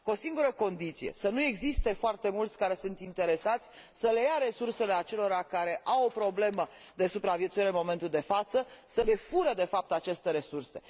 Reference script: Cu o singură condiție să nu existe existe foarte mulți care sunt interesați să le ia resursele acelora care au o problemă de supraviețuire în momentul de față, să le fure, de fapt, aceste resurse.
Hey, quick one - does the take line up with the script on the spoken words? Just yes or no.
no